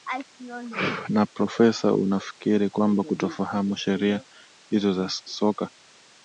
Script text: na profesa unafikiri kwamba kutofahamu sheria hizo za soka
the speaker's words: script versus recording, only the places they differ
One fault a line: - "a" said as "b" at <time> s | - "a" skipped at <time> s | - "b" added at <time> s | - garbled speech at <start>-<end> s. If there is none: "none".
none